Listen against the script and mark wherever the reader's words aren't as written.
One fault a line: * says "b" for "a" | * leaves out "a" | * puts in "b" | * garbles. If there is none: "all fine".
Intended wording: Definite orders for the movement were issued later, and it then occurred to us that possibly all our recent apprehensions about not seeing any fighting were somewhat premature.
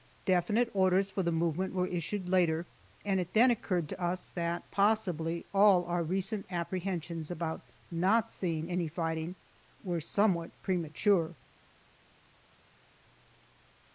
all fine